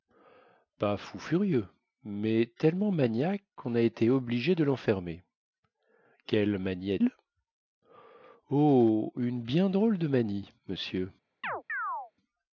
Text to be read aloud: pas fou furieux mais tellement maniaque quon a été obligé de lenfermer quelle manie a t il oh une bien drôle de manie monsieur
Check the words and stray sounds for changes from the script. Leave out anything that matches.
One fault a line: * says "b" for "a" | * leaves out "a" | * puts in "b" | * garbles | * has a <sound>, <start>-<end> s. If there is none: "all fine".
* leaves out "t"
* has a chirp, 11.4-12.1 s